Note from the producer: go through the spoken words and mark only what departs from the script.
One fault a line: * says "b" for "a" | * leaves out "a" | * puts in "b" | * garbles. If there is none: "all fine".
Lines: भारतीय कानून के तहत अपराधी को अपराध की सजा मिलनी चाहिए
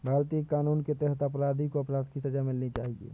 all fine